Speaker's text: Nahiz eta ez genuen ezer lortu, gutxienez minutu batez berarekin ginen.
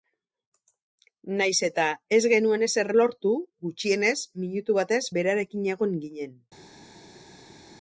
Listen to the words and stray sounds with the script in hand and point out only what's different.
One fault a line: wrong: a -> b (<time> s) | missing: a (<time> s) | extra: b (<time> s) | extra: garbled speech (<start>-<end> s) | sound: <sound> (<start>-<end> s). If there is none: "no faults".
extra: egon (5.8 s)